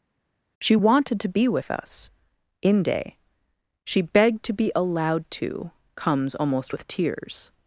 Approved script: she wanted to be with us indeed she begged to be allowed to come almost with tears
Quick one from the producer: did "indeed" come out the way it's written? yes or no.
no